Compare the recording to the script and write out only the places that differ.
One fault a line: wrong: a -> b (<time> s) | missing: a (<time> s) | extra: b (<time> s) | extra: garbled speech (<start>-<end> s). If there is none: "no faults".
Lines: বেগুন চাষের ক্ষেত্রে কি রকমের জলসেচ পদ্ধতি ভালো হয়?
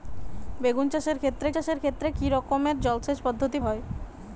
extra: চাষের ক্ষেত্রে (1.5 s)
missing: ভালো (3.6 s)